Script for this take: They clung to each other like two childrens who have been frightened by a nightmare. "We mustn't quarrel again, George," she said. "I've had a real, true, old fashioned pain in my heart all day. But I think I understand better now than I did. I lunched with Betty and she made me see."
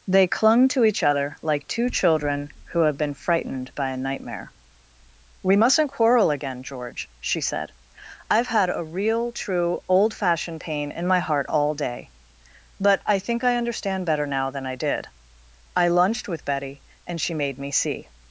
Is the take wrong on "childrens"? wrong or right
wrong